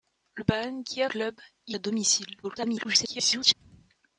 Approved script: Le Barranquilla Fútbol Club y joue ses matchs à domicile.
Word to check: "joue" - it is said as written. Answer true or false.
false